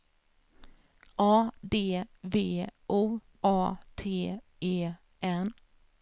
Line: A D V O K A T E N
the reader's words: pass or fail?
fail